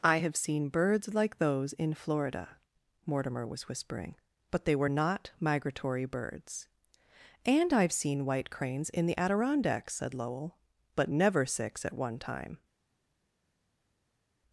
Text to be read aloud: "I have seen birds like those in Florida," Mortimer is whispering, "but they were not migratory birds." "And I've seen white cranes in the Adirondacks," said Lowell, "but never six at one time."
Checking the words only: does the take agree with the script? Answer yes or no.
no